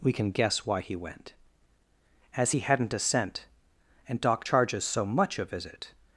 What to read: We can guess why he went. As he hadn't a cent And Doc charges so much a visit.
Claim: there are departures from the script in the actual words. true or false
false